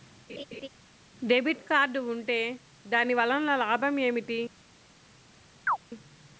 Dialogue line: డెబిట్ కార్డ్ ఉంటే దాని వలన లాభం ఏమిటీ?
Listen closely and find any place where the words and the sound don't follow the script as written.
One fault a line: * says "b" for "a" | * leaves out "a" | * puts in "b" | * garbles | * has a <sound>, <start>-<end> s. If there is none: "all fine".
* has a laugh, 0.3-0.7 s
* has a chirp, 5.7-5.8 s